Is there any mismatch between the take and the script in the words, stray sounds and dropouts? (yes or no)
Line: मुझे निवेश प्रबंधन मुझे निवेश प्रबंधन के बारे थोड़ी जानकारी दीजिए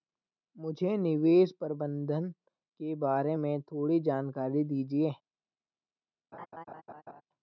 yes